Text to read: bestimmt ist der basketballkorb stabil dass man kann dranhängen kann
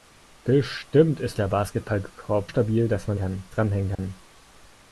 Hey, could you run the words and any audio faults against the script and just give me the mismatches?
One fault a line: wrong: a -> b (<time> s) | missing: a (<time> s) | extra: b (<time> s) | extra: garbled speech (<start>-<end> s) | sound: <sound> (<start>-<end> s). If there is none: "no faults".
sound: dropout (3.9-4.0 s)